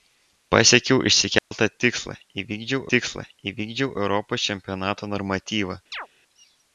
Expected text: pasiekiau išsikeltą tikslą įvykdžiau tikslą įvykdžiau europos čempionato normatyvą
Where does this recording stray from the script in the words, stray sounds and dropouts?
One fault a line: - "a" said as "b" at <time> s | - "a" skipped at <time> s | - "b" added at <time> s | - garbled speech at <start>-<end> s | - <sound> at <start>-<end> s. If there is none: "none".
- dropout at 1.4-1.5 s
- chirp at 5.9-6.1 s